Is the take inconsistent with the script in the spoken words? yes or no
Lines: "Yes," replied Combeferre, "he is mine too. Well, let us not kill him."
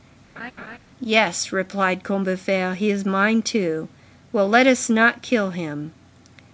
no